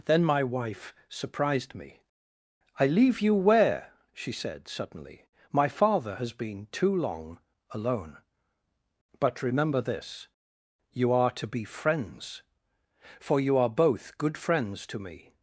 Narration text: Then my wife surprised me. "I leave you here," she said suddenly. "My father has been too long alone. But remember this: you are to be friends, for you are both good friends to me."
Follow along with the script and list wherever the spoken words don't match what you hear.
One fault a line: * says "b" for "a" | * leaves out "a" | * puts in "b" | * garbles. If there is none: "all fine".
* says "where" for "here"